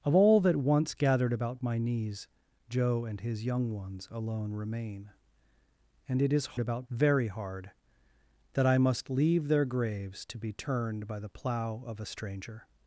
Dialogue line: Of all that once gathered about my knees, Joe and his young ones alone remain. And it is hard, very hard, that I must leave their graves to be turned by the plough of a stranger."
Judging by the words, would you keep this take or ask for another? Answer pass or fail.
fail